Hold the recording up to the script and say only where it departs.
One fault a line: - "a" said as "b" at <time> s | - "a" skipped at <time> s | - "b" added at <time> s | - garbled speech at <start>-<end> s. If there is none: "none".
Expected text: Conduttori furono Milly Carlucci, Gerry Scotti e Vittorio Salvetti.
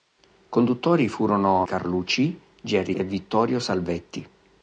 - "Milly" skipped at 1.7 s
- "Scotti" skipped at 2.9 s